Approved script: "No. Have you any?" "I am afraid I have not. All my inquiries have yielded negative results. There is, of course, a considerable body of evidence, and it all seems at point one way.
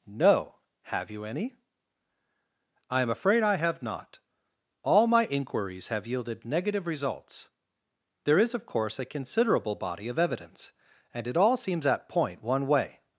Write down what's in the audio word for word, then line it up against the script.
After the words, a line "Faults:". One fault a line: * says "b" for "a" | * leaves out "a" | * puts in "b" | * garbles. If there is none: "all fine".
"No. Have you any?" "I am afraid I have not. All my inquiries have yielded negative results. There is, of course, a considerable body of evidence, and it all seems at point one way.
Faults:
all fine